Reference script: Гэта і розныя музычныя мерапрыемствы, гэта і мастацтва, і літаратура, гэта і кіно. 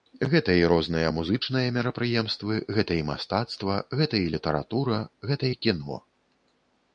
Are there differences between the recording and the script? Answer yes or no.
yes